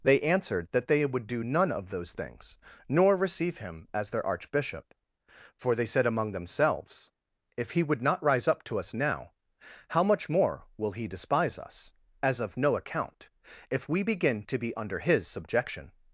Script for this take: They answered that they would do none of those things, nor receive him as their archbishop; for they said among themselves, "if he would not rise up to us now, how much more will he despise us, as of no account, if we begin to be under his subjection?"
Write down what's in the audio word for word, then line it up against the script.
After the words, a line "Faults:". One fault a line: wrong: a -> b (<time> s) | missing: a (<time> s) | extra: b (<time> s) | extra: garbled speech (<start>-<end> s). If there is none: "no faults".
They answered that they would do none of those things, nor receive him as their archbishop; for they said among themselves, "if he would not rise up to us now, how much more will he despise us, as of no account, if we begin to be under his subjection?"
Faults:
no faults